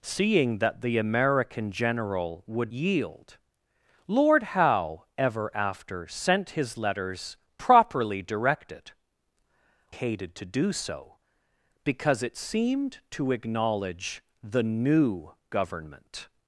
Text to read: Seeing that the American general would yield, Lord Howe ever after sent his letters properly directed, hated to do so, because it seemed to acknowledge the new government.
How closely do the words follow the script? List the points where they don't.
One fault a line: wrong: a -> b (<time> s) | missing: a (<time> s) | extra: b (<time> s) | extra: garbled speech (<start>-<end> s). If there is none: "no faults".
no faults